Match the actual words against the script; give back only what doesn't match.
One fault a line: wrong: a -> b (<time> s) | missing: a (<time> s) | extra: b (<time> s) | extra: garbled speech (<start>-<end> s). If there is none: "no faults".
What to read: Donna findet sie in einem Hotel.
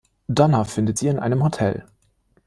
no faults